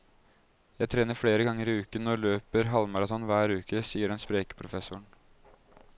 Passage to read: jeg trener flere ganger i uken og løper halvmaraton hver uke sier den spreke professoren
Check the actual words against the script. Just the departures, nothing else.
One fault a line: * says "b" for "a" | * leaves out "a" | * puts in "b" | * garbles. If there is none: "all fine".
all fine